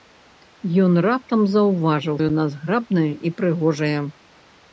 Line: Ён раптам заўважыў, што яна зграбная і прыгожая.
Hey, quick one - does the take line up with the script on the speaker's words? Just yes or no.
no